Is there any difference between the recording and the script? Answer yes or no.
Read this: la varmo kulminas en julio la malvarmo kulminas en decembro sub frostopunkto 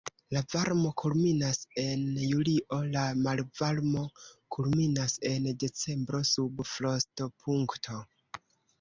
no